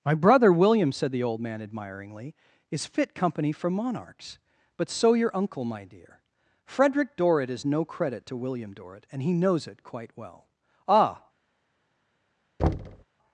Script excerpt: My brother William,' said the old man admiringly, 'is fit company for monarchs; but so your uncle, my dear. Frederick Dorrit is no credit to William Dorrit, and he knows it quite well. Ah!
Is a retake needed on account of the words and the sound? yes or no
yes